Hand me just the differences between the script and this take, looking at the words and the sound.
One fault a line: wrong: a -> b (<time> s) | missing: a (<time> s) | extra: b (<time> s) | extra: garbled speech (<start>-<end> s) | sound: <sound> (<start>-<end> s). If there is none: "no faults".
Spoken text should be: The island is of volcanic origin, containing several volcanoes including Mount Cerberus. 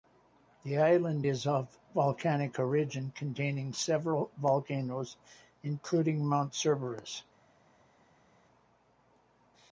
no faults